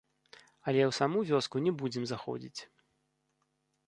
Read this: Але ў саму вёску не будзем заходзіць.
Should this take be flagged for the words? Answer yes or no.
no